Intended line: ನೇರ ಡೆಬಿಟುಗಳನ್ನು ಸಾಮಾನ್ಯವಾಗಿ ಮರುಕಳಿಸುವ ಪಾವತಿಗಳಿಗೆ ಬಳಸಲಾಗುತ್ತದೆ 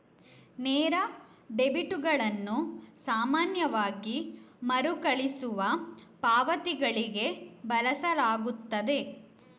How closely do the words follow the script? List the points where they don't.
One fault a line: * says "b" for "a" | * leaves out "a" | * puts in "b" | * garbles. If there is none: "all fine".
all fine